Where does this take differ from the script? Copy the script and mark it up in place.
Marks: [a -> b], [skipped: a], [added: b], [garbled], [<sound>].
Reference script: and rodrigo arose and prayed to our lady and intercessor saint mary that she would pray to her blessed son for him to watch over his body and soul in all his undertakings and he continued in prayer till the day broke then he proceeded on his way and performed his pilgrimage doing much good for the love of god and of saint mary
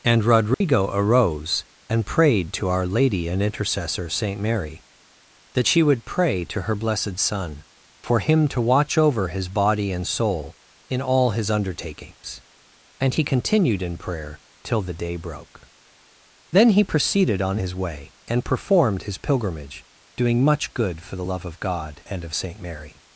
and rodrigo [dropout] arose and prayed to our lady and intercessor saint mary that she would pray to her blessed son for him to watch over his body and soul in all his undertakings and he continued in prayer till the day broke then he proceeded on his way and performed his pilgrimage doing much good for the love of god and of saint mary